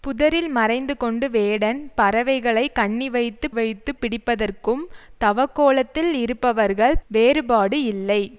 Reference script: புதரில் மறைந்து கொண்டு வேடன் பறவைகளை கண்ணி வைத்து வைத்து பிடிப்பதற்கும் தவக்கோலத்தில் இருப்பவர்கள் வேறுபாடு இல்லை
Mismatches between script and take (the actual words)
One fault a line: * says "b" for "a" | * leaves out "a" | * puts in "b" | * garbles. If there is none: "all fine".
all fine